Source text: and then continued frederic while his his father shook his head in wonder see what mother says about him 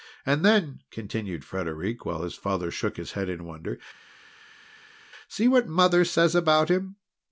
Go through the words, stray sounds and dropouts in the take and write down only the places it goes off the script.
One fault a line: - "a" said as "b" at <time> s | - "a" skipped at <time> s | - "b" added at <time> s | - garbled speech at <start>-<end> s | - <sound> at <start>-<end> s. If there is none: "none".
- "his" skipped at 2.3 s